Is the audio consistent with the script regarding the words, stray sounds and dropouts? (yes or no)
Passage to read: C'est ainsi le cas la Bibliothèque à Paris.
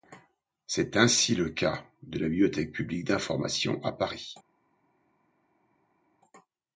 no